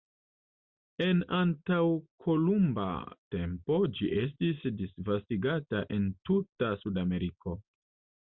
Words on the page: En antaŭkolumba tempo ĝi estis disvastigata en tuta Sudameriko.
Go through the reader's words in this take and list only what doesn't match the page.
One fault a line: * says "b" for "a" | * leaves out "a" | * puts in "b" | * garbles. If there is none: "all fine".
all fine